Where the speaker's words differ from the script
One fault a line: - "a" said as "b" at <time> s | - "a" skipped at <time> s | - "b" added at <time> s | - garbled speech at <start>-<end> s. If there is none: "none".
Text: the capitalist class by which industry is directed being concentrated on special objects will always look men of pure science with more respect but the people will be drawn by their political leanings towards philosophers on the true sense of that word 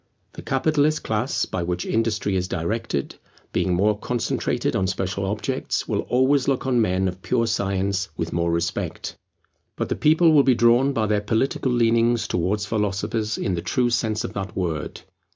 - "more" added at 3.8 s
- "on" added at 6.7 s
- "on" said as "in" at 13.4 s